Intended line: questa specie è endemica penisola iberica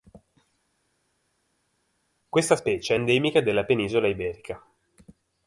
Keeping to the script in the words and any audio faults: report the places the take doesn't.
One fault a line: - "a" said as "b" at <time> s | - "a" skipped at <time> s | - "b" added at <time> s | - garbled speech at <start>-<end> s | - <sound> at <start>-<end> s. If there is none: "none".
- "della" added at 3.4 s